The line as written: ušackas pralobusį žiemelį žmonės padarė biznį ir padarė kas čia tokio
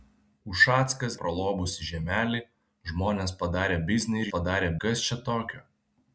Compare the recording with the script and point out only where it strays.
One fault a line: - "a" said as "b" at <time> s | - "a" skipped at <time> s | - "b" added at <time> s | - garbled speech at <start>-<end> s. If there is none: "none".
none